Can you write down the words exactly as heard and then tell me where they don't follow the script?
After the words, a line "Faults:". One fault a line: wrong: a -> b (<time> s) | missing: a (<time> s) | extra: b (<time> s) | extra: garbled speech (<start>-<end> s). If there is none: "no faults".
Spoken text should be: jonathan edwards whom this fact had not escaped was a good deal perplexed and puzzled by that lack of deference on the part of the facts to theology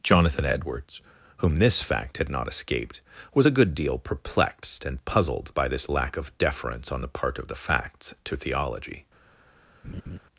jonathan edwards whom this fact had not escaped was a good deal perplexed and puzzled by this lack of deference on the part of the facts to theology
Faults:
wrong: that -> this (5.7 s)